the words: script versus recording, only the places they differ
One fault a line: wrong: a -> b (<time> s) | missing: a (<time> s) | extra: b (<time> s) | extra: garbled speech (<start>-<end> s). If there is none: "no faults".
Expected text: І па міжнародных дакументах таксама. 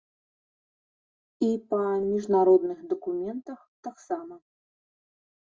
no faults